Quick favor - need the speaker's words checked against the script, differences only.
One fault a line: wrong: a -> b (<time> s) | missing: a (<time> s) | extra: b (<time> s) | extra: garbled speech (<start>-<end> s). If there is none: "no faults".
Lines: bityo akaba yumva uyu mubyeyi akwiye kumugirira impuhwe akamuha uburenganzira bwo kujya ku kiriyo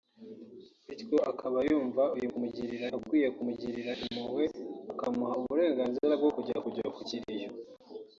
wrong: mubyeyi -> kumugirira (2.3 s)
extra: kujya (6.6 s)